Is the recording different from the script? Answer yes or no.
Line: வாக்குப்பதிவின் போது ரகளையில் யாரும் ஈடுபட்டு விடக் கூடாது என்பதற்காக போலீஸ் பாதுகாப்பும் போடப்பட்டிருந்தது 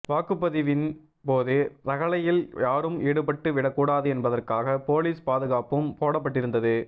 no